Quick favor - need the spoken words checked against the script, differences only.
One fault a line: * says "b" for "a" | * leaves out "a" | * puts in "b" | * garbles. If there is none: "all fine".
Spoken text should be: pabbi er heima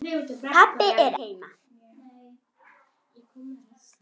all fine